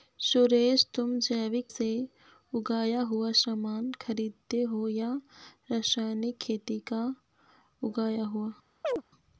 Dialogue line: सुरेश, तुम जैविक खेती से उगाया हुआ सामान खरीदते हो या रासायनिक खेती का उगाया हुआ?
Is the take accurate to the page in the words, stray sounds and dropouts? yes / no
no